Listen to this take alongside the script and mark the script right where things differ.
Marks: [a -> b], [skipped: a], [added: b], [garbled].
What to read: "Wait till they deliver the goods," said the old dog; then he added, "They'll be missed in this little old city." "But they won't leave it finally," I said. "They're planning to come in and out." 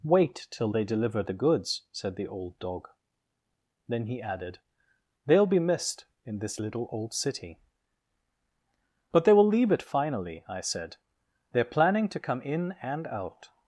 "Wait till they deliver the goods," said the old dog; then he added, "They'll be missed in this little old city." "But they [won't -> will] leave it finally," I said. "They're planning to come in and out."